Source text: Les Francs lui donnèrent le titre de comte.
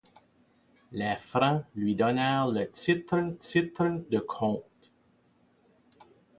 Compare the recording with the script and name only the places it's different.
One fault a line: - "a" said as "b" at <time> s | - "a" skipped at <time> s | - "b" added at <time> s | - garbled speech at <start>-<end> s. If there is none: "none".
- "titre" added at 3.3 s